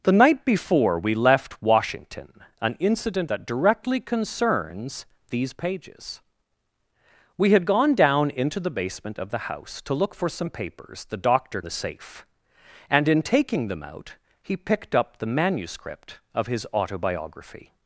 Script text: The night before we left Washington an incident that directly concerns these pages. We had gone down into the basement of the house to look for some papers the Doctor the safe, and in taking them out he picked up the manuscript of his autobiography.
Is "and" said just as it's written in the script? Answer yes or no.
yes